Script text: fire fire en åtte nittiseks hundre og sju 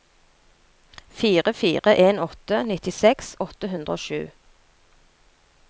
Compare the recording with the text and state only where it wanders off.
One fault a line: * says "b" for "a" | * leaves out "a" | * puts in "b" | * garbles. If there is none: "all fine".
* puts in "åtte"